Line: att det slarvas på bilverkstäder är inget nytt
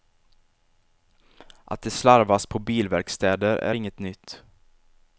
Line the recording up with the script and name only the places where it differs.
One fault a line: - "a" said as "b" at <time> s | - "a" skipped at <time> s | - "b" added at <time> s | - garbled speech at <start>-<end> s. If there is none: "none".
none